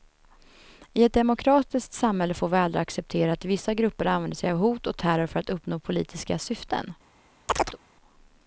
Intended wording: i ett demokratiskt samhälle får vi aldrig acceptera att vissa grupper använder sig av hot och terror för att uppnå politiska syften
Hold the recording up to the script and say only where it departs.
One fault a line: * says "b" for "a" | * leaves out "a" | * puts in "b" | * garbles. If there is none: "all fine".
all fine